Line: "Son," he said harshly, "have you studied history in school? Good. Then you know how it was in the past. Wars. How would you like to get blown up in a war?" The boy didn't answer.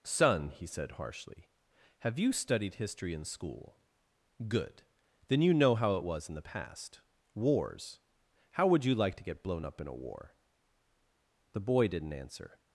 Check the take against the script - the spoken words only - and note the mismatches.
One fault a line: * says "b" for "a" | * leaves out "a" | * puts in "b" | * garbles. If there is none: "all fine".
all fine